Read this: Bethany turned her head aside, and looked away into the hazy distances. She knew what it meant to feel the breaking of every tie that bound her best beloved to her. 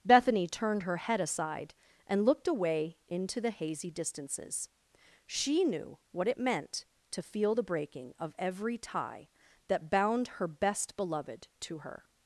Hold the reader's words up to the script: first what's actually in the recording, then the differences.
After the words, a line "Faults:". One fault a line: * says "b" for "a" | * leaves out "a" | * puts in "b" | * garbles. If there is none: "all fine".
Bethany turned her head aside, and looked away into the hazy distances. She knew what it meant to feel the breaking of every tie that bound her best beloved to her.
Faults:
all fine